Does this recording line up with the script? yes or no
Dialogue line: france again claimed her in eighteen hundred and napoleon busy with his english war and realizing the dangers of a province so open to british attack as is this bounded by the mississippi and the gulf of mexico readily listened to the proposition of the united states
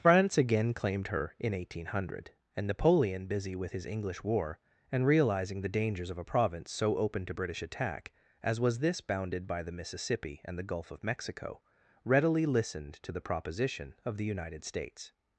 no